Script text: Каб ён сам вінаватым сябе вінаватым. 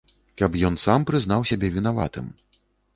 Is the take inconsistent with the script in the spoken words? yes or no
yes